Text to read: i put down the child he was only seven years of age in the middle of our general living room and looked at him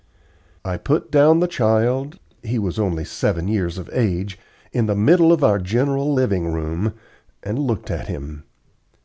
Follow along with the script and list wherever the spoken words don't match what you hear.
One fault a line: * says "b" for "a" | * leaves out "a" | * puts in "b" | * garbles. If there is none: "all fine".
all fine